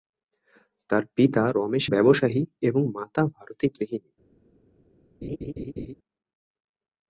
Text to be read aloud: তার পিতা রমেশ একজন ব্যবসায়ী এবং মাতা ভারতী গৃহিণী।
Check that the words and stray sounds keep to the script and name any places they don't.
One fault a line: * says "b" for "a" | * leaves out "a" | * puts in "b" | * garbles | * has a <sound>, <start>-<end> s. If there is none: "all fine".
* leaves out "একজন"
* has a laugh, 5.2-5.9 s